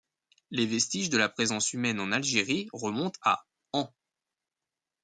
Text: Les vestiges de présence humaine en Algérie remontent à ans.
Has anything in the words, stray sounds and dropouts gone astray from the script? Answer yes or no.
yes